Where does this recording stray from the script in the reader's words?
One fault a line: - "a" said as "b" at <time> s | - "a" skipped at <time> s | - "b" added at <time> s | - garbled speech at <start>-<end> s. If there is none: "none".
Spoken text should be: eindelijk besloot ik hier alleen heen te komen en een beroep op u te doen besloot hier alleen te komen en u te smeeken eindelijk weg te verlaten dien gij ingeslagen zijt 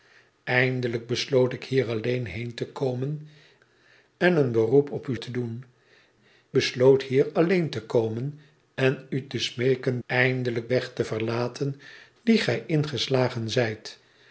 none